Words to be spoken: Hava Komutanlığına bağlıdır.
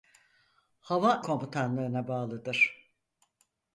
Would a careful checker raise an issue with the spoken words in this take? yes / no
no